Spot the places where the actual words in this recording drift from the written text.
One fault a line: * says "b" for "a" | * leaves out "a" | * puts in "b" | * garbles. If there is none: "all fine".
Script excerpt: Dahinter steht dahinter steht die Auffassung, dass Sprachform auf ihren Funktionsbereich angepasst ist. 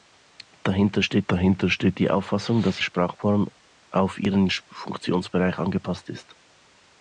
all fine